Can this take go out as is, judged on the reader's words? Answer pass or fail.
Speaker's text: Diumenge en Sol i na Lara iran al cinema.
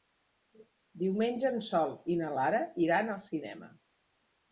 pass